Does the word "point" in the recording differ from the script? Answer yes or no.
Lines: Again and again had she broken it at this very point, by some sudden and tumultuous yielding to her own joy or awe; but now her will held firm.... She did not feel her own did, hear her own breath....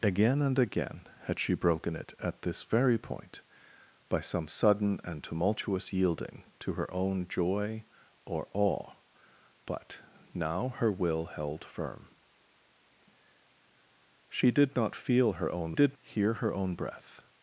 no